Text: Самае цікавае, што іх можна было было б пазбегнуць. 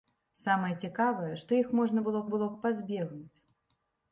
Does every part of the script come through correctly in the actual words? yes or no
yes